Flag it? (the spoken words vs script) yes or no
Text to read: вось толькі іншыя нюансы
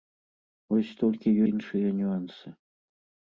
no